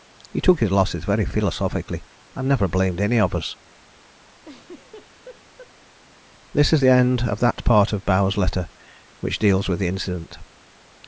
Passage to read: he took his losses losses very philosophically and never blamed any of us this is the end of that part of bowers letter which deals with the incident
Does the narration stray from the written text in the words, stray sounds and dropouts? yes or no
yes